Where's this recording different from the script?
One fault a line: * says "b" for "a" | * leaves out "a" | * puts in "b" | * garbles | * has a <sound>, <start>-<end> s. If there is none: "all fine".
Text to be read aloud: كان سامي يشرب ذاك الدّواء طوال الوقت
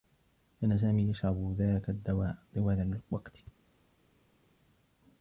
all fine